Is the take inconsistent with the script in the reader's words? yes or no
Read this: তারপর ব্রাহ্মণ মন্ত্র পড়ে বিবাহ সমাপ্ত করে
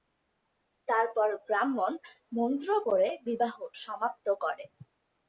no